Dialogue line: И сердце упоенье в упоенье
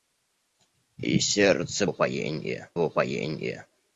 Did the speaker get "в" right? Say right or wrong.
right